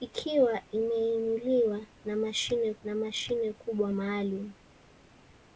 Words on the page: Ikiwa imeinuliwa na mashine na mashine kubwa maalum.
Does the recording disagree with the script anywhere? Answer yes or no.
no